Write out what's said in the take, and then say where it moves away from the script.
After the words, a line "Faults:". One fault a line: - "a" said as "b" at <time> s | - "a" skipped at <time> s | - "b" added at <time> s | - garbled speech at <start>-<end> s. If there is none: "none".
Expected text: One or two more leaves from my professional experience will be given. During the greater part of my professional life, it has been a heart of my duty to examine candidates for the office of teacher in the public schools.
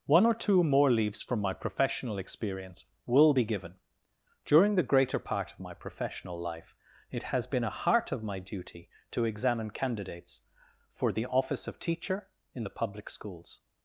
One or two more leaves from my professional experience will be given. During the greater part of my professional life, it has been a heart of my duty to examine candidates for the office of teacher in the public schools.
Faults:
none